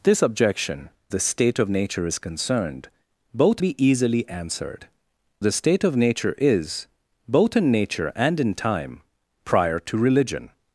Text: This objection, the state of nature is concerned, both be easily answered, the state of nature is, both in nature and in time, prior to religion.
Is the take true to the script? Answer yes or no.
yes